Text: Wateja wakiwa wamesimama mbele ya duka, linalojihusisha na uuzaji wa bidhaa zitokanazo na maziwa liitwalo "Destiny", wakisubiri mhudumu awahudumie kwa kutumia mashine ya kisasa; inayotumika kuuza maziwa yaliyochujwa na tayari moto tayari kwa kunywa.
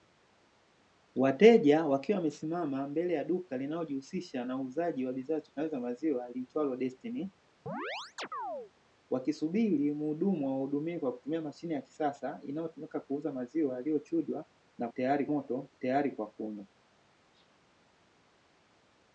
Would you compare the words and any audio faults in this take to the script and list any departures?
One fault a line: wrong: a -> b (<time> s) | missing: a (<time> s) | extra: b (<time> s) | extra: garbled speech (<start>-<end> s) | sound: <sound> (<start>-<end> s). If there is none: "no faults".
sound: chirp (7.7-8.7 s)